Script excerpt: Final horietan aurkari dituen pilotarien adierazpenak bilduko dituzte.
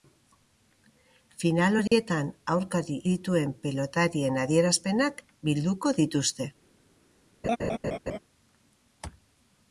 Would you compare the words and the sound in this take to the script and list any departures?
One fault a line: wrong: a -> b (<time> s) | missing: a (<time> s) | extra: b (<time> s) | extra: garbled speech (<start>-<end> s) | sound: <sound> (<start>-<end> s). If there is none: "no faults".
sound: dropout (1.9-1.9 s)
sound: laugh (7.4-8.2 s)